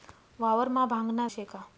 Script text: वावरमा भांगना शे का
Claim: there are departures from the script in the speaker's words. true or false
false